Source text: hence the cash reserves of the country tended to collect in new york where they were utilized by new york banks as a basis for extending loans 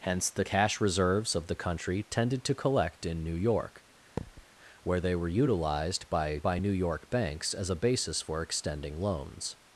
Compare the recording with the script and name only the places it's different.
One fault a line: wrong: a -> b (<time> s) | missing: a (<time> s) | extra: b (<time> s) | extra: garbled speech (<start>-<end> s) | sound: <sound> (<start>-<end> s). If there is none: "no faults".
sound: thud (4.2-4.5 s)
extra: by (6.4 s)